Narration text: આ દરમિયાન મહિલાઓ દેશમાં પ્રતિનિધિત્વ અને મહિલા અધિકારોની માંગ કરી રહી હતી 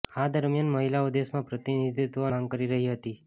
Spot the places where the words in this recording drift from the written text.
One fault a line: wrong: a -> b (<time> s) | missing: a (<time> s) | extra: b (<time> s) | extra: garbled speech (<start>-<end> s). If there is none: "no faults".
missing: અને મહિલા અધિકારોની (2.3 s)